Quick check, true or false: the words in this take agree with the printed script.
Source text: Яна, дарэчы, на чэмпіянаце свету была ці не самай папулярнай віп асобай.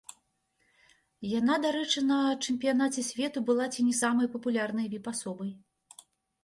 true